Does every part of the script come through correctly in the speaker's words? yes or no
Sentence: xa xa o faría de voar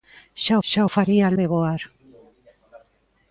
yes